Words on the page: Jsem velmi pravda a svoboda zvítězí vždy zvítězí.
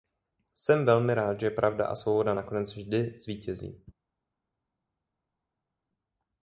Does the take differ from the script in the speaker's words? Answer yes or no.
yes